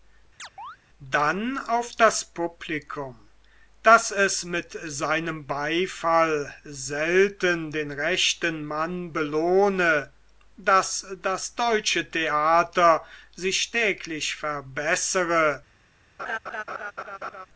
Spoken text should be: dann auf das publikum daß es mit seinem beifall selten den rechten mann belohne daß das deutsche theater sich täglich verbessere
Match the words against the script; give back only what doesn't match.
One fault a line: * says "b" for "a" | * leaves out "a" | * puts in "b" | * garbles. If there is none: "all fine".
all fine